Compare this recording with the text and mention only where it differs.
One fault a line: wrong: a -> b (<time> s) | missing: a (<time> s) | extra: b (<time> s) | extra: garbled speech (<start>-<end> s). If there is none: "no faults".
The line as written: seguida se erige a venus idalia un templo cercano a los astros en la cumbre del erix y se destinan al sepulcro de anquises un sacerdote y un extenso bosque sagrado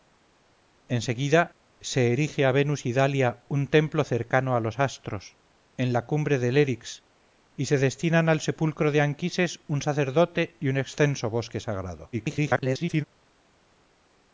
extra: garbled speech (12.1-13.0 s)